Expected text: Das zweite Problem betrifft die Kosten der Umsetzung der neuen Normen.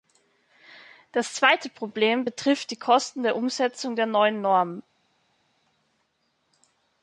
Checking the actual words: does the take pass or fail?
pass